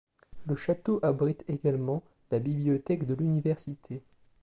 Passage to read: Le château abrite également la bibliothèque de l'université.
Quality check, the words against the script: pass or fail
pass